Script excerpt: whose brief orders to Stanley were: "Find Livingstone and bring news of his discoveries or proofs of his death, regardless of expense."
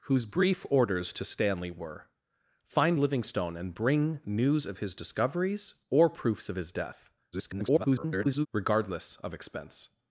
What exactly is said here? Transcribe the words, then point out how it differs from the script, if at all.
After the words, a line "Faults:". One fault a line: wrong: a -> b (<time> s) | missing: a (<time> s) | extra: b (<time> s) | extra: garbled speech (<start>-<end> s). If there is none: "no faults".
whose brief orders to Stanley were: "Find Livingstone and bring news of his discoveries or proofs of his death, [garbled] regardless of expense."
Faults:
extra: garbled speech (7.3-8.5 s)